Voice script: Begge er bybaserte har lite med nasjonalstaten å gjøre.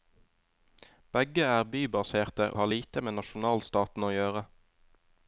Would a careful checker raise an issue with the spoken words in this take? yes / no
no